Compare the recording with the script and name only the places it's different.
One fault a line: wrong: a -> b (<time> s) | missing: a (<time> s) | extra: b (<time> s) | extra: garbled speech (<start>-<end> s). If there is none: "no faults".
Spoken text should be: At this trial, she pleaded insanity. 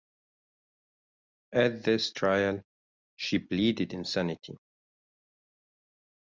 no faults